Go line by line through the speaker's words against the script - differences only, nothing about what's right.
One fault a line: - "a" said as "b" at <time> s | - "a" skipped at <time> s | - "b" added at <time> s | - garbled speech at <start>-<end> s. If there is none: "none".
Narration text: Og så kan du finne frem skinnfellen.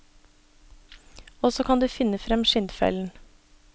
none